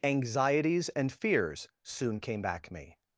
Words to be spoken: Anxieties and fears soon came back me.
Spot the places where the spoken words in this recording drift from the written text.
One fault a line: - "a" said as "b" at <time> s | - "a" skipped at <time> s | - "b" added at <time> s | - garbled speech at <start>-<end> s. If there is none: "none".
none